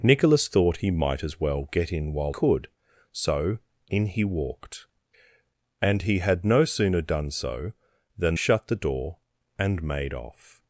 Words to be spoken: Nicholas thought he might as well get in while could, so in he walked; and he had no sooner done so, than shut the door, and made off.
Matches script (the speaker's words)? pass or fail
pass